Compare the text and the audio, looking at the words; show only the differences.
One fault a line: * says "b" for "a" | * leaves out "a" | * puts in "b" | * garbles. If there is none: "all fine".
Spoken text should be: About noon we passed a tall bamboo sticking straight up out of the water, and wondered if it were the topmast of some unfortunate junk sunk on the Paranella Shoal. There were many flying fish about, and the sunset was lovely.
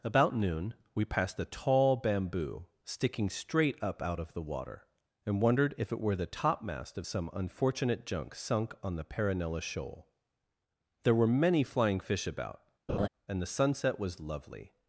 all fine